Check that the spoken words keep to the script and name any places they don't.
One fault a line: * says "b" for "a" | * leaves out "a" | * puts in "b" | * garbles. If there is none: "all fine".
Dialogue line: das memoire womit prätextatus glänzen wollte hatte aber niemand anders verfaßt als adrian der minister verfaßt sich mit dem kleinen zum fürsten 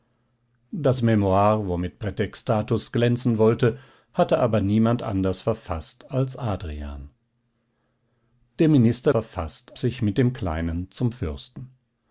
all fine